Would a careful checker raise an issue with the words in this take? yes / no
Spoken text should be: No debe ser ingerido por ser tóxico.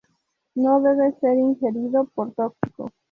yes